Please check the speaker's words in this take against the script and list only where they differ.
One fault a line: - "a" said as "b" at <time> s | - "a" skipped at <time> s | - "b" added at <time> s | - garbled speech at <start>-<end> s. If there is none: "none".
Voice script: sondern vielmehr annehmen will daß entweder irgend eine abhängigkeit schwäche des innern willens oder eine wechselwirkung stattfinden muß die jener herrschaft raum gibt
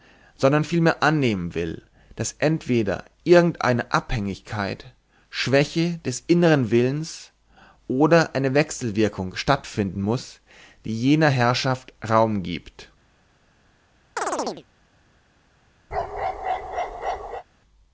none